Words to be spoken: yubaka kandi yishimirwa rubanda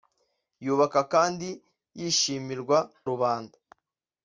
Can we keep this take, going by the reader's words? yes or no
yes